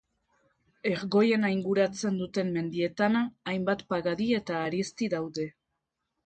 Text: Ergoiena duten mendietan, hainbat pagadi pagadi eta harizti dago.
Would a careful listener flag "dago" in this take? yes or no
yes